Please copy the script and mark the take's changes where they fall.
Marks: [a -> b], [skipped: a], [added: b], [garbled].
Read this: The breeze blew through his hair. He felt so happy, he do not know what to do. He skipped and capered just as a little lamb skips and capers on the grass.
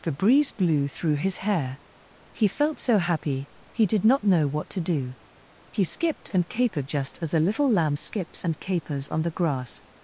The breeze blew through his hair. He felt so happy, he [do -> did] not know what to do. He skipped and capered just as a little lamb skips and capers on the grass.